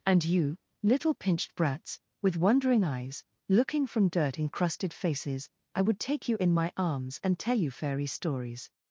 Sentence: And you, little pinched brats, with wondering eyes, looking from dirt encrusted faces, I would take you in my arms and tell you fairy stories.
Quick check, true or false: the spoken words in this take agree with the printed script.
true